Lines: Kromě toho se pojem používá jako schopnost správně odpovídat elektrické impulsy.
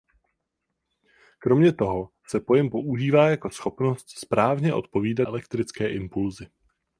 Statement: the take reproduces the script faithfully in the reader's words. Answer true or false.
true